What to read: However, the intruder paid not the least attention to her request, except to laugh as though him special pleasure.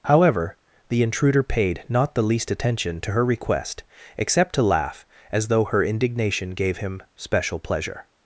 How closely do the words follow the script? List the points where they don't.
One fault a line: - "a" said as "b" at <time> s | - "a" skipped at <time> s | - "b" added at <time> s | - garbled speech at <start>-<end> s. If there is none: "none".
- "her indignation gave" added at 5.7 s